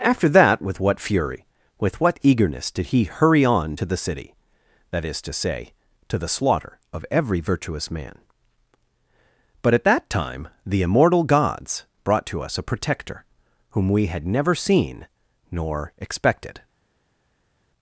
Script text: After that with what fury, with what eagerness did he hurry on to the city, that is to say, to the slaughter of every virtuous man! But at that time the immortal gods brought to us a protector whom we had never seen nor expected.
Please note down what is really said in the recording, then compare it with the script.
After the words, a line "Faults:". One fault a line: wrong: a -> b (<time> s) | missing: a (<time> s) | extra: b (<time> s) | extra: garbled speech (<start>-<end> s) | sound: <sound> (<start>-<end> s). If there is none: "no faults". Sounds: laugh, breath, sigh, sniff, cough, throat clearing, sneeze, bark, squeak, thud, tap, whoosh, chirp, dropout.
After that with what fury, with what eagerness did he hurry on to the city, that is to say, to the slaughter of every virtuous man! But at that time the immortal gods brought to us a protector whom we had never seen nor expected.
Faults:
no faults